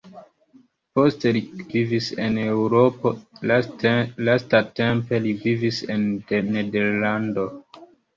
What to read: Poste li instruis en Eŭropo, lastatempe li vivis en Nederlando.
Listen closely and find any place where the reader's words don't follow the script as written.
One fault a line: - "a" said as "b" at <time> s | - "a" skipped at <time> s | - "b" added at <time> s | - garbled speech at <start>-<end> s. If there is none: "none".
- "instruis" said as "vivis" at 1.7 s